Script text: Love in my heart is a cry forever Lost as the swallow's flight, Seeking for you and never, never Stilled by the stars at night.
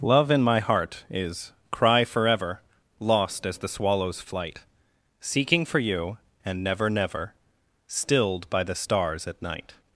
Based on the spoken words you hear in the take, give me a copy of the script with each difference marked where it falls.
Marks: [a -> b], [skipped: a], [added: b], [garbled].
Love in my heart is [skipped: a] cry forever Lost as the swallow's flight, Seeking for you and never, never Stilled by the stars at night.